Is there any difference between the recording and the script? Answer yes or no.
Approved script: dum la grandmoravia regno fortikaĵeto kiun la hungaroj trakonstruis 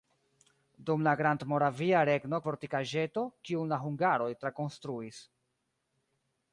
no